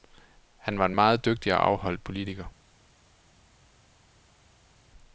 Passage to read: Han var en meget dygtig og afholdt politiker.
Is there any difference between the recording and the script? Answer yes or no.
no